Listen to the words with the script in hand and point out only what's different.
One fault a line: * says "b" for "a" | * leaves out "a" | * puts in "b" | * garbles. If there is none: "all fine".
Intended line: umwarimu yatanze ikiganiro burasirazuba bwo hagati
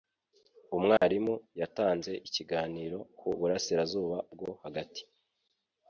* puts in "ku"